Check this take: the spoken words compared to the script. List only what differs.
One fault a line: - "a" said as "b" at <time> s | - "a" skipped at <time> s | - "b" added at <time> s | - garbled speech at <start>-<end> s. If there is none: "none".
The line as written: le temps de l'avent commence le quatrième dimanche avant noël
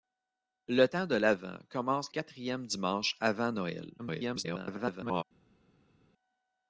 - "le" skipped at 2.1 s
- garbled speech at 4.0-5.2 s